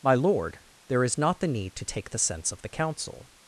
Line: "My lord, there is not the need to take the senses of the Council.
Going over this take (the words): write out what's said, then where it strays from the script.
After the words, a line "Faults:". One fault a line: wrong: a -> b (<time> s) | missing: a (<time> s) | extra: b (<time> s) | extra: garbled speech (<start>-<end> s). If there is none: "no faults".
"My lord, there is not the need to take the sense of the Council.
Faults:
wrong: senses -> sense (2.2 s)